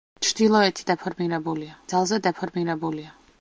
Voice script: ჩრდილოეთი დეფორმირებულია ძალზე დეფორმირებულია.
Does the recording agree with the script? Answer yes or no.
yes